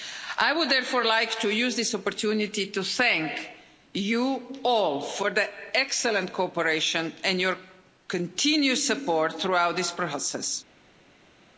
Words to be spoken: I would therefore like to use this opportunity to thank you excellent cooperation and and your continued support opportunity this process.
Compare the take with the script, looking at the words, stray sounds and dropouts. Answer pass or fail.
fail